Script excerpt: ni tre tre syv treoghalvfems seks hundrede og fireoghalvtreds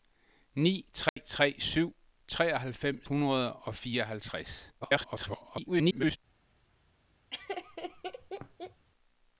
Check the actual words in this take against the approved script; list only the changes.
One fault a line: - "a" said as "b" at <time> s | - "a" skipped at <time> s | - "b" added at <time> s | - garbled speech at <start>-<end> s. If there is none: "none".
- "seks" skipped at 3.1 s
- garbled speech at 4.8-6.2 s